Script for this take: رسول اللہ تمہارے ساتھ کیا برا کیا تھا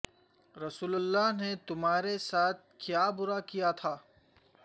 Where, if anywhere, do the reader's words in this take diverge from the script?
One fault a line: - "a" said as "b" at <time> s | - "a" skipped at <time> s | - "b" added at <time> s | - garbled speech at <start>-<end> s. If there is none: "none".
- "نے" added at 1.4 s